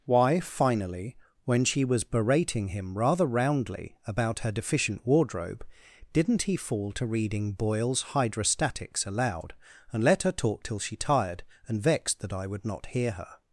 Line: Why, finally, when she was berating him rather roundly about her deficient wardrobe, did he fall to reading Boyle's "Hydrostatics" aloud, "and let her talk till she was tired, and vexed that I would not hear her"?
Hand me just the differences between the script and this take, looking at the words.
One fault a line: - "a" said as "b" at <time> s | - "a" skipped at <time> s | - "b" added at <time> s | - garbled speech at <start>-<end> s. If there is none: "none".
- "did" said as "didn't" at 6.1 s
- "was" skipped at 10.9 s